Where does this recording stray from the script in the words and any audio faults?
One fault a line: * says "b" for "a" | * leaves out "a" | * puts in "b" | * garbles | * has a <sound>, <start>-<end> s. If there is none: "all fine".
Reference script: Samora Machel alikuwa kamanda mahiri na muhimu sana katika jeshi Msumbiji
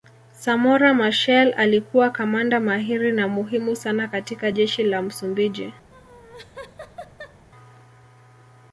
* puts in "la"
* has a laugh, 5.9-7.5 s